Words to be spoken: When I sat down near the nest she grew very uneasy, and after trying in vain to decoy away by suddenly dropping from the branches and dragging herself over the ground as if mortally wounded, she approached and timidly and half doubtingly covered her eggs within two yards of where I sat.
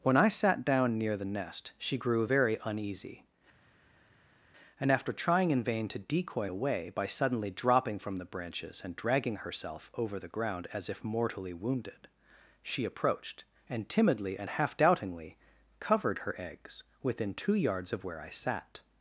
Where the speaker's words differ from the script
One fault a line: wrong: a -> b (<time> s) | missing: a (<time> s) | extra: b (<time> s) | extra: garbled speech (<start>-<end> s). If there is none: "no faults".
no faults